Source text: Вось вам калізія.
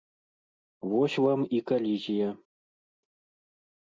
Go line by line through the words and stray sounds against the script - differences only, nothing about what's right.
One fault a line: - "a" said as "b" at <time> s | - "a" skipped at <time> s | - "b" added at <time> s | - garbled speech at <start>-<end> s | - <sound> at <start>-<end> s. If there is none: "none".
- "і" added at 1.5 s